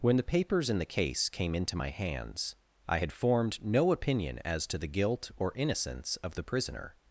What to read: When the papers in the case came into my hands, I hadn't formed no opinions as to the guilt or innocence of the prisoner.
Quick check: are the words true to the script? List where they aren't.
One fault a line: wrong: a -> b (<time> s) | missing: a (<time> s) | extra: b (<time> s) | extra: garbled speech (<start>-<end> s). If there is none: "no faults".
wrong: hadn't -> had (3.0 s)
wrong: opinions -> opinion (3.9 s)